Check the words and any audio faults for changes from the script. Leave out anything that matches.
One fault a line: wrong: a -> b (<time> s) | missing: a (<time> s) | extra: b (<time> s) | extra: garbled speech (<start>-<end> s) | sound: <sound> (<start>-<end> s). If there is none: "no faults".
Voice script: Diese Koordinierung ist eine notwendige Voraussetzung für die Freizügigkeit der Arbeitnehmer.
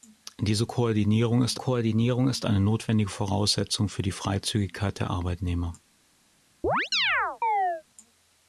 extra: Koordinierung ist (1.6 s)
sound: chirp (6.6-7.8 s)